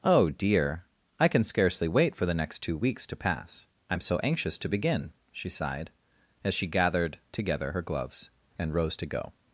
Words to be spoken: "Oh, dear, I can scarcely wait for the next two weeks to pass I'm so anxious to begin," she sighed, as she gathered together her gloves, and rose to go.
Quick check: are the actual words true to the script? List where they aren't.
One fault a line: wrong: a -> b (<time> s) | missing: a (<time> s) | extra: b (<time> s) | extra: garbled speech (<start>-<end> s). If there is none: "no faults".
no faults